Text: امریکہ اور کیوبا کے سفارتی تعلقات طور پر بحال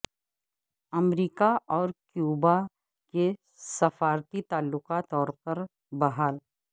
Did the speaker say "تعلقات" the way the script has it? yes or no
yes